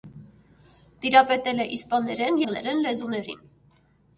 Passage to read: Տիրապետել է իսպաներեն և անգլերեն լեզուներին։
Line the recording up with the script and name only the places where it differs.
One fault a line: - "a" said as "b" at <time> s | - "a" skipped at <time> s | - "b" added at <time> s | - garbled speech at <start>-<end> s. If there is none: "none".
- "և" skipped at 2.4 s